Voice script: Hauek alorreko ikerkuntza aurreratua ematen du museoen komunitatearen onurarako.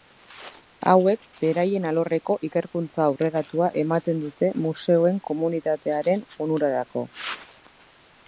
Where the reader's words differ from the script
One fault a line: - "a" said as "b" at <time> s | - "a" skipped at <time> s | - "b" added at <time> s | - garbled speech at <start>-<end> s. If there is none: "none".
- "beraien" added at 1.4 s
- "du" said as "dute" at 4.3 s